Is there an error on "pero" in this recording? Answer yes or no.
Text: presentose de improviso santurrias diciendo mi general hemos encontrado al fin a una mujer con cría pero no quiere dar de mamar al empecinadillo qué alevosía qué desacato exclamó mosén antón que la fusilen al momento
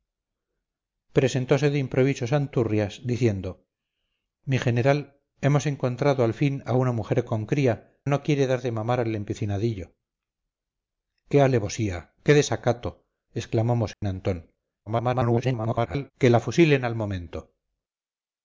yes